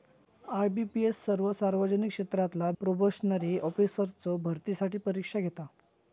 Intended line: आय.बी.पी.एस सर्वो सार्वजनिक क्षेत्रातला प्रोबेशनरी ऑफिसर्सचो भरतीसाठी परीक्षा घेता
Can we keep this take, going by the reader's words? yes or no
yes